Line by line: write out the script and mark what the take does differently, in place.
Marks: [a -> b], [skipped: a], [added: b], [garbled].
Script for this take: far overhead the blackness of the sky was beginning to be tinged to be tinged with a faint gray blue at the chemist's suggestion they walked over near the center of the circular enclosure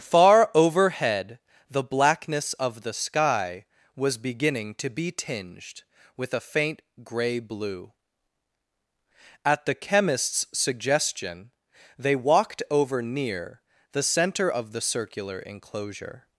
far overhead the blackness of the sky was beginning to be tinged [skipped: to be tinged] with a faint gray blue at the chemist's suggestion they walked over near the center of the circular enclosure